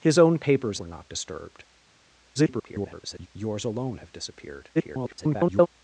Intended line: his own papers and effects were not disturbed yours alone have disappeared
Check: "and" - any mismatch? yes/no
yes